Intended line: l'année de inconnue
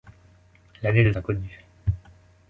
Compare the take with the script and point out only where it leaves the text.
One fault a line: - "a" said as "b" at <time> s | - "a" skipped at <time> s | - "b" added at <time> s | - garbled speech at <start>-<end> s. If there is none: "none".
none